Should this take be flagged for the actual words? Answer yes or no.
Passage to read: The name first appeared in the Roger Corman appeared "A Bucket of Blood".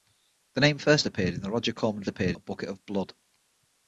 no